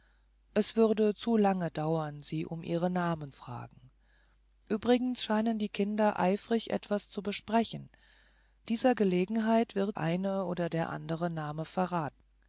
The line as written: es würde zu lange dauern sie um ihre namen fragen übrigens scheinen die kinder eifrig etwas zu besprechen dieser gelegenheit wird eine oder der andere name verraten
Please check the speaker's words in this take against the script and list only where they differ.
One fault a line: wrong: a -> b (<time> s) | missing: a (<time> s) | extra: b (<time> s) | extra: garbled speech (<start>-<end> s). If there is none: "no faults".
no faults